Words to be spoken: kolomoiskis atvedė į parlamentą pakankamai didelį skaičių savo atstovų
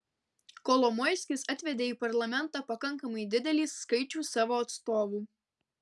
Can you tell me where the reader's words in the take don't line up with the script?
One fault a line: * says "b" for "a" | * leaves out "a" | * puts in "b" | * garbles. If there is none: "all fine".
all fine